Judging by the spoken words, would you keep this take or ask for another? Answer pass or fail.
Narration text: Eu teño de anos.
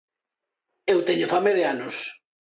fail